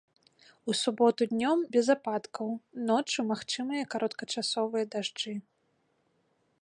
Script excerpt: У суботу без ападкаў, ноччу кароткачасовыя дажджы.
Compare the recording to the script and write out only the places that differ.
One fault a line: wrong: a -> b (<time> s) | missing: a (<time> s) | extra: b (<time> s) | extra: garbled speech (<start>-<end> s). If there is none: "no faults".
extra: днём (1.3 s)
extra: магчымыя (3.3 s)